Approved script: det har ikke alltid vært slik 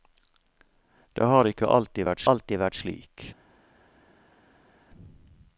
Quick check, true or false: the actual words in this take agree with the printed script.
false